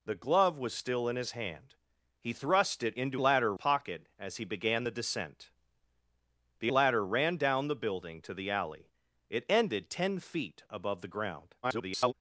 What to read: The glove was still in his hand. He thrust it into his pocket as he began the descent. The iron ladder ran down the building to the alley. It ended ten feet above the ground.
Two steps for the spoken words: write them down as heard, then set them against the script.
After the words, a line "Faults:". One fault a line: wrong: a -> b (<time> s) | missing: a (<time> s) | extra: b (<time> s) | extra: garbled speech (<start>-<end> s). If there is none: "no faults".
The glove was still in his hand. He thrust it into ladder pocket as he began the descent. The ladder ran down the building to the alley. It ended ten feet above the ground. [garbled]
Faults:
wrong: his -> ladder (3.2 s)
missing: iron (6.7 s)
extra: garbled speech (11.6-12.1 s)